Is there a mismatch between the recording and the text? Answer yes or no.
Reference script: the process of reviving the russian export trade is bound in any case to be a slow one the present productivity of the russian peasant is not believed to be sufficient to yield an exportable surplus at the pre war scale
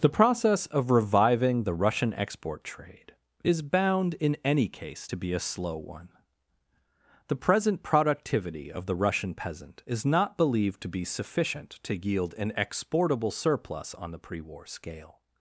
yes